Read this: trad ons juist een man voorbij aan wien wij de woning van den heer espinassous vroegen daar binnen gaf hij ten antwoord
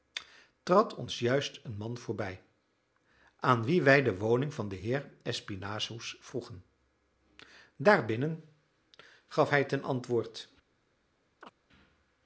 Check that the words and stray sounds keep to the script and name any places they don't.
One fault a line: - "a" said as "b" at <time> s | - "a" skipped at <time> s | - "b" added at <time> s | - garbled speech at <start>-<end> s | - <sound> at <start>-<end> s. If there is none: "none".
- chirp at 11.4-11.5 s